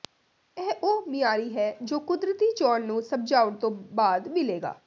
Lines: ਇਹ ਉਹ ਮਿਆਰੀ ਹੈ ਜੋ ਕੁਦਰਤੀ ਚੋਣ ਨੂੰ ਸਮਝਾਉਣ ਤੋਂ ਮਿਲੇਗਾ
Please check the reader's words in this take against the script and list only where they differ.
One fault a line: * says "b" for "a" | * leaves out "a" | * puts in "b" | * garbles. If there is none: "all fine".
* puts in "ਬਾਅਦ"